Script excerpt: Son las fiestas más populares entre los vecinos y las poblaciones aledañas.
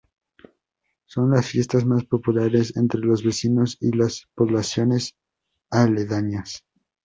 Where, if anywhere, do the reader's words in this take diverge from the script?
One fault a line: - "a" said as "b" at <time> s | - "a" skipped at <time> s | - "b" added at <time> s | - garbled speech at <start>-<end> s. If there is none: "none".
none